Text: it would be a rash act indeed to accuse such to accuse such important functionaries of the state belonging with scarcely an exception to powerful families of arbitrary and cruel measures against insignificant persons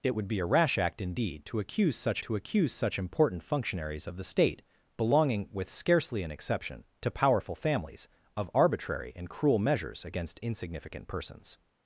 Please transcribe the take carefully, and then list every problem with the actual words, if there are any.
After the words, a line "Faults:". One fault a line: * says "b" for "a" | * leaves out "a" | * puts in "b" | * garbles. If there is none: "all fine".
it would be a rash act indeed to accuse such to accuse such important functionaries of the state belonging with scarcely an exception to powerful families of arbitrary and cruel measures against insignificant persons
Faults:
all fine